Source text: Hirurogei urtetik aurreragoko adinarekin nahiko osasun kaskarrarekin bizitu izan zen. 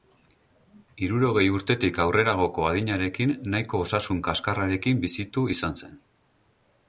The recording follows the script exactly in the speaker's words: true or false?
true